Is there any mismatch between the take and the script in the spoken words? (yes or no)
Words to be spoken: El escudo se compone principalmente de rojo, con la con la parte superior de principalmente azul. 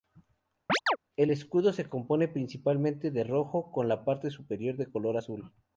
yes